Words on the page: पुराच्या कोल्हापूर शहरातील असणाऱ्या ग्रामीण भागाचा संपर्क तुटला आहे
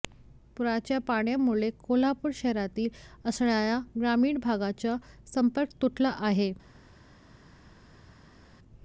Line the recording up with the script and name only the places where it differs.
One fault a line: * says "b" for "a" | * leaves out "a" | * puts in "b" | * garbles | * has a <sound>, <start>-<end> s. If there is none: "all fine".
* puts in "पाण्यामुळे"